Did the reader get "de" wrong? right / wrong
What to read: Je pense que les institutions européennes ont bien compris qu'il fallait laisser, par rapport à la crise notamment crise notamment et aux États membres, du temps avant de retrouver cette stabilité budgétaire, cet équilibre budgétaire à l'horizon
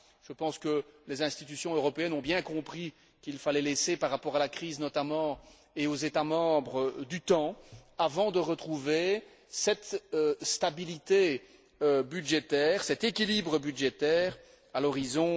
right